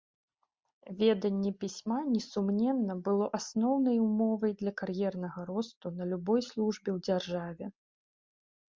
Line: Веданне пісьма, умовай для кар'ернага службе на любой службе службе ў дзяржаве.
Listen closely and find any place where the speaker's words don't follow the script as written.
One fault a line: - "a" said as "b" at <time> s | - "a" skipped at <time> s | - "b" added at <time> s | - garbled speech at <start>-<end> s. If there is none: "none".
- "несумненна было асноўнай" added at 2.1 s
- "службе" said as "росту" at 5.5 s
- "службе" skipped at 6.9 s